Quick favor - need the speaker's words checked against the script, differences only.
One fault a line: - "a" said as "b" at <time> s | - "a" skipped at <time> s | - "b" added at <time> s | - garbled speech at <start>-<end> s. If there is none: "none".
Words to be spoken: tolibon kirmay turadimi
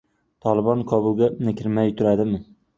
- "kobulga" added at 0.9 s